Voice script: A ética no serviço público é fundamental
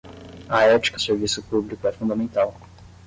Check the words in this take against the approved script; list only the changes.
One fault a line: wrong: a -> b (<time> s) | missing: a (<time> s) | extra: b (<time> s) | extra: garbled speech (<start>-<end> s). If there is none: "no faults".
missing: no (1.0 s)